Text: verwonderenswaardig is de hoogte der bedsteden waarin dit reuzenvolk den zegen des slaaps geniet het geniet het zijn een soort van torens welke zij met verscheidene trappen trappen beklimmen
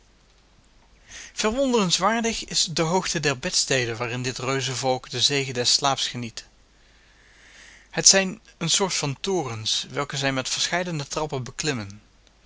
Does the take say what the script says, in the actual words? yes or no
no